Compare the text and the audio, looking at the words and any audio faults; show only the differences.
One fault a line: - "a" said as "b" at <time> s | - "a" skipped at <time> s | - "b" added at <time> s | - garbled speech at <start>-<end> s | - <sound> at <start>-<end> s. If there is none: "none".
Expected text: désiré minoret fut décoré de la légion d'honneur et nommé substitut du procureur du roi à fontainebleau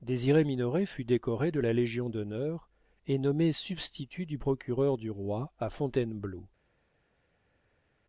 none